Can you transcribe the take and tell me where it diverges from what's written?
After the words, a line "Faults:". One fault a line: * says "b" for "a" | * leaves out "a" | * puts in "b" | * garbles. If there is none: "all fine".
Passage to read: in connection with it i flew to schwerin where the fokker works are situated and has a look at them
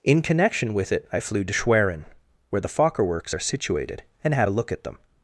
in connection with it i flew to schwerin where the fokker works are situated and had a look at them
Faults:
* says "had" for "has"